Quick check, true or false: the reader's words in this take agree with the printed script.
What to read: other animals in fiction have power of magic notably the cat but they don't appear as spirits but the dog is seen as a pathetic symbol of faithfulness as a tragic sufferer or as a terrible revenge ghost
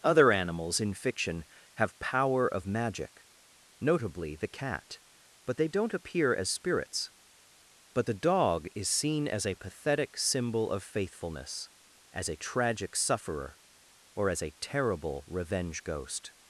true